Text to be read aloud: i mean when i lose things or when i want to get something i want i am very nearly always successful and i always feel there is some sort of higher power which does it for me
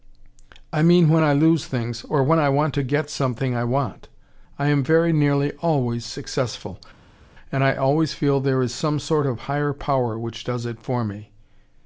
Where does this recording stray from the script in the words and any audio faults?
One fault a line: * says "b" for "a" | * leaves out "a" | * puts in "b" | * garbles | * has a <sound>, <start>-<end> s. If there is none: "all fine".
all fine